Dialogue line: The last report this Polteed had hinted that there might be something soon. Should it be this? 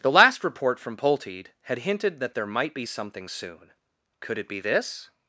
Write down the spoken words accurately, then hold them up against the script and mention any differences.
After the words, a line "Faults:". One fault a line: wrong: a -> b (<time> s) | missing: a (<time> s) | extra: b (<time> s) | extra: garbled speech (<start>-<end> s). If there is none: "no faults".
The last report from Polteed had hinted that there might be something soon. Could it be this?
Faults:
wrong: this -> from (0.8 s)
wrong: Should -> Could (4.2 s)